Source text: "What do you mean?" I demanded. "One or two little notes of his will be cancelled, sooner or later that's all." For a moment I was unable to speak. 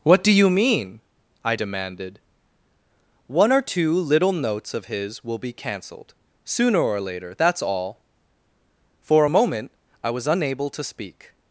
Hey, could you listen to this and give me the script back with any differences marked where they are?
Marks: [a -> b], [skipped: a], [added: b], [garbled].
"What do you mean?" I demanded. "One or two little notes of his will be cancelled, sooner or later that's all." For a moment I was unable to speak.